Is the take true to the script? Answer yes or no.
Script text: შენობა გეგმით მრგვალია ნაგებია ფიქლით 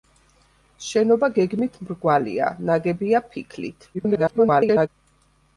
no